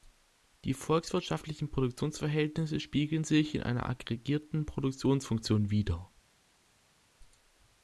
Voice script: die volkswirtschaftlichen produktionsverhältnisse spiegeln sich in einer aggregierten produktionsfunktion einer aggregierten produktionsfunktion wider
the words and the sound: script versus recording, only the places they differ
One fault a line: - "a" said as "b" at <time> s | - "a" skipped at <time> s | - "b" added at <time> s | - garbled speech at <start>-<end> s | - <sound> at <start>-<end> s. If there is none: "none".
- "einer aggregierten produktionsfunktion" skipped at 5.7 s